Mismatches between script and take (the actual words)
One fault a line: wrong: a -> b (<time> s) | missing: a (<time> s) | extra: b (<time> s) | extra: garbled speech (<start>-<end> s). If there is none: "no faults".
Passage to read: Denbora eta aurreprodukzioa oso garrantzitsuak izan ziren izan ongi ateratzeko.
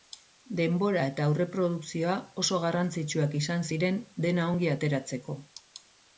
wrong: izan -> dena (4.3 s)